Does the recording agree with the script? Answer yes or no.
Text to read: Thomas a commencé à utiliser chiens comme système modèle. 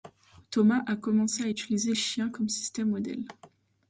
yes